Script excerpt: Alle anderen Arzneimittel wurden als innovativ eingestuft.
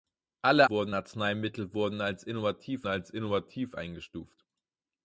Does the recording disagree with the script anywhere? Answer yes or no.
yes